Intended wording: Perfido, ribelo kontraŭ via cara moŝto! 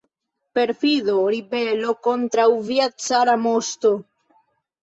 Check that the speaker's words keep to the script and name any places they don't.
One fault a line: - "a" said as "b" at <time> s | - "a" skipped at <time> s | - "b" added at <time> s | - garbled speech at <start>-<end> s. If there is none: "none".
none